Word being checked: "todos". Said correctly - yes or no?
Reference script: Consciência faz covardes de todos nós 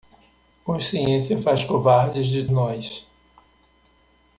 no